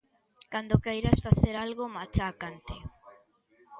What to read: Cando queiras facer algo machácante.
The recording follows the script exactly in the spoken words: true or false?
true